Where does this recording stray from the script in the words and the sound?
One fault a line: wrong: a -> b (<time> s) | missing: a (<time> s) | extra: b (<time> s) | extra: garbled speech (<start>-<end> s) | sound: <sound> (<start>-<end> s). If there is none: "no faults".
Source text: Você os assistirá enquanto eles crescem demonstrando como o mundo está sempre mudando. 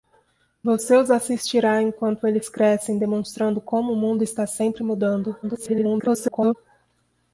extra: garbled speech (5.4-6.6 s)